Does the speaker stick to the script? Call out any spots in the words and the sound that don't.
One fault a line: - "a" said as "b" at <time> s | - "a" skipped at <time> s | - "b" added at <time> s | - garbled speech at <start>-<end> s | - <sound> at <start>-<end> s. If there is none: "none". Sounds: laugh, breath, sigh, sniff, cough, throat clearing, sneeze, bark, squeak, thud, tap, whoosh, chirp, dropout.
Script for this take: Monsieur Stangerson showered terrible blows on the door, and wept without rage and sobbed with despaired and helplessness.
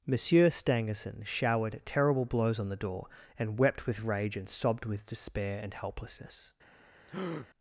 - "without" said as "with" at 3.9 s
- "despaired" said as "despair" at 5.0 s
- breath at 7.1-7.5 s